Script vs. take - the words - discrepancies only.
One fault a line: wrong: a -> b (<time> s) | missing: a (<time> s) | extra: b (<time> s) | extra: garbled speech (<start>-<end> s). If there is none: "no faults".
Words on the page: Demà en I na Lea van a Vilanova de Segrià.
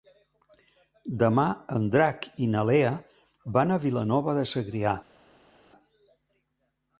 extra: Drac (1.9 s)